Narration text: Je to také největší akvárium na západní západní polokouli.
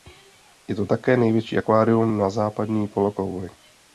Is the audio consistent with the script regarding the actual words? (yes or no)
no